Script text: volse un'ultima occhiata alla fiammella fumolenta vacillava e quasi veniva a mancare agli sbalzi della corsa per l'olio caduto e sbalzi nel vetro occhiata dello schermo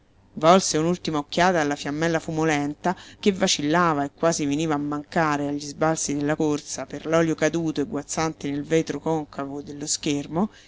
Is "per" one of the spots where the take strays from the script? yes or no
no